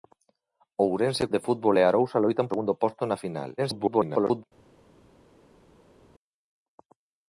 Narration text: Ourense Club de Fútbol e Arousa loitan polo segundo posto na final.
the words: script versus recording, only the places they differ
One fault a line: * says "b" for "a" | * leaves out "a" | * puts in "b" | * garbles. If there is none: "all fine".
* leaves out "Club"
* leaves out "polo"
* garbles